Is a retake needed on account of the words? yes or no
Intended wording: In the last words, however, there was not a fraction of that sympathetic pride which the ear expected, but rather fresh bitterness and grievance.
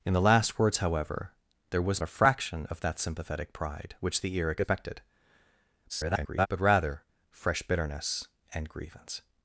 yes